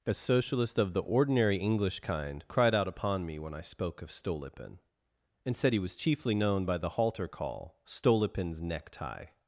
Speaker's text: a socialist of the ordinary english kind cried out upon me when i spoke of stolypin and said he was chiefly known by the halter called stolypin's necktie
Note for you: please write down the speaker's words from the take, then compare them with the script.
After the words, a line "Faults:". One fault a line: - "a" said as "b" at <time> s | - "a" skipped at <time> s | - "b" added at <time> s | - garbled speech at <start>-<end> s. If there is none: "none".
a socialist of the ordinary english kind cried out upon me when i spoke of stolypin and said he was chiefly known by the halter call stolypin's necktie
Faults:
- "called" said as "call" at 7.3 s